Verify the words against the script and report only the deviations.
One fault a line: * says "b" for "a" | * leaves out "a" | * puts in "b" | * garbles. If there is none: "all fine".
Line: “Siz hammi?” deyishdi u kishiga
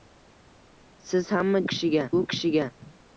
* says "kishiga" for "deyishdi"